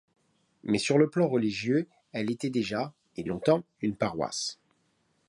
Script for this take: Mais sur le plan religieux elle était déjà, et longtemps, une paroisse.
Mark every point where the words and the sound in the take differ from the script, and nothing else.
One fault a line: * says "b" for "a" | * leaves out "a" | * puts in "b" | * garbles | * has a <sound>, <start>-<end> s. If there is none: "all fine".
all fine